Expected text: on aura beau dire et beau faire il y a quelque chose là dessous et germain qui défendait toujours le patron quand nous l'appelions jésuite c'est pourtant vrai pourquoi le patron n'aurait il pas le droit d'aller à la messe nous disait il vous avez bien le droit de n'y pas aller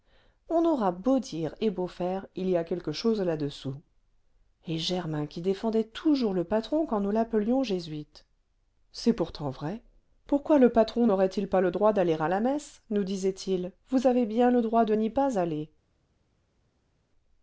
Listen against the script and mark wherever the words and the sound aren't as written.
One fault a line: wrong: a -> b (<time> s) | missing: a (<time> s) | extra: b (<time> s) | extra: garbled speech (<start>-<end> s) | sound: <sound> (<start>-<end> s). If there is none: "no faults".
no faults